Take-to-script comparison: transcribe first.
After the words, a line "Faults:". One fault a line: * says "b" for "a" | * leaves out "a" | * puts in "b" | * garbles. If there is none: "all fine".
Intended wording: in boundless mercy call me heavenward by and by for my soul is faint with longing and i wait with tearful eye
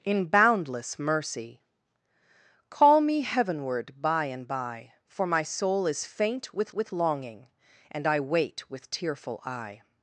in boundless mercy call me heavenward by and by for my soul is faint with with longing and i wait with tearful eye
Faults:
* puts in "with"